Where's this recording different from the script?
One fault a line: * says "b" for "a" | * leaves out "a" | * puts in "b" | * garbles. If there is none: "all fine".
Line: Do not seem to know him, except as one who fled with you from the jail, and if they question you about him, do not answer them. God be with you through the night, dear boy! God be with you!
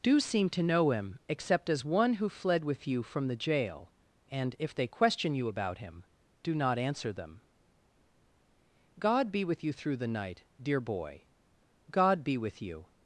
* leaves out "not"